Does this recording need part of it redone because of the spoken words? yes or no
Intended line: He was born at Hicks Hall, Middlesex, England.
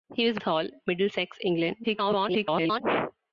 yes